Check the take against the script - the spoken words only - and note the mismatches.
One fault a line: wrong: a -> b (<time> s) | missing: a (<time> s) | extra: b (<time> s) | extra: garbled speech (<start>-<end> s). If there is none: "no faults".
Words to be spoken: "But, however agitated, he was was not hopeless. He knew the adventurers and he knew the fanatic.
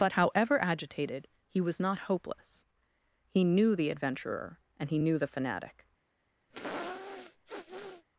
missing: was (1.8 s)
wrong: adventurers -> adventurer (3.9 s)